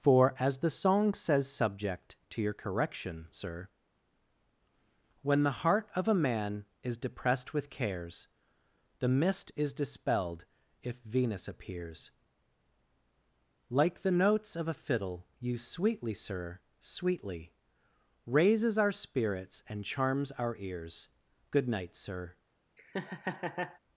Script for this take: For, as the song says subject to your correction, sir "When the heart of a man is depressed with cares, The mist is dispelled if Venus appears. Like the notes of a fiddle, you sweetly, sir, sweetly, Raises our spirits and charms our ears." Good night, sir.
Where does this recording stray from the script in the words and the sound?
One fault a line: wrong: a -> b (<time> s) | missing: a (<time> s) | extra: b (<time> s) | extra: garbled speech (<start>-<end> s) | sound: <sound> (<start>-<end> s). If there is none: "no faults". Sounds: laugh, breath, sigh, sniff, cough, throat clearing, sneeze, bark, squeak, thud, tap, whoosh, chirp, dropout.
sound: laugh (22.8-23.8 s)